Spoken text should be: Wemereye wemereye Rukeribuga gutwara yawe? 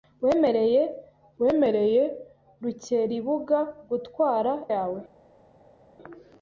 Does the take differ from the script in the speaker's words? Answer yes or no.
no